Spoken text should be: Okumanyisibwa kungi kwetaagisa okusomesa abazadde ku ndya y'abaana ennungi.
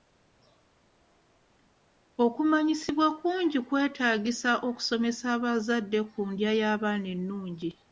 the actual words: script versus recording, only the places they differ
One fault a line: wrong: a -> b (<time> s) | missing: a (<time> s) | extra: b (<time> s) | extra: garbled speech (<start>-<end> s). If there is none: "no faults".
no faults